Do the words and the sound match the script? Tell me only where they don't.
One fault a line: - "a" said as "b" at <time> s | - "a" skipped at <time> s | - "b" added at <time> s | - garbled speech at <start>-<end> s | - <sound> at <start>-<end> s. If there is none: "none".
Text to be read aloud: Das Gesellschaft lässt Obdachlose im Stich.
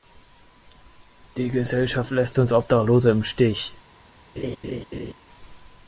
- "Das" said as "Die" at 1.4 s
- "uns" added at 2.4 s
- laugh at 4.4-5.1 s